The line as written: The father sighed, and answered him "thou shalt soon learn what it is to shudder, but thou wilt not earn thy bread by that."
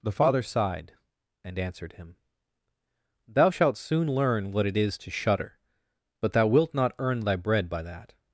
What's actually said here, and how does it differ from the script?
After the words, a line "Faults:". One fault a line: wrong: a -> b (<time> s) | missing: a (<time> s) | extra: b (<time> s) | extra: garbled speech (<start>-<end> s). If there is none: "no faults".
The father sighed, and answered him "thou shalt soon learn what it is to shudder, but thou wilt not earn thy bread by that."
Faults:
no faults